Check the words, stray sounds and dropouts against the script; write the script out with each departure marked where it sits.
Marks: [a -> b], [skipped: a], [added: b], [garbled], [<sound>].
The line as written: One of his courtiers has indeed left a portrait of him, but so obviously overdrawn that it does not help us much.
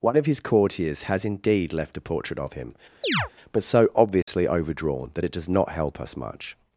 One of his courtiers has indeed left a portrait of him, [chirp] but so obviously [dropout] overdrawn that it does not help us much.